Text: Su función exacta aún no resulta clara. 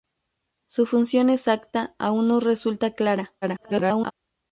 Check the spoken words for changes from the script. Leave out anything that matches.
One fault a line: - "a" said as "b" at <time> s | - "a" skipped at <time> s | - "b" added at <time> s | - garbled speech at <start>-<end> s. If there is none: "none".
- garbled speech at 3.4-4.1 s